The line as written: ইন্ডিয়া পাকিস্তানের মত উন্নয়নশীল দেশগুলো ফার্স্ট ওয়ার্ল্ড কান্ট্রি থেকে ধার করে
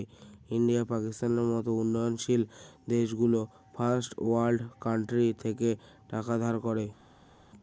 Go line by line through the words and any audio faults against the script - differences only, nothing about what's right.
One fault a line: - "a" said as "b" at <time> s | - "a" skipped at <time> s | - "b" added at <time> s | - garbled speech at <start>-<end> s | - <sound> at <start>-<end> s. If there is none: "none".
- "টাকা" added at 6.1 s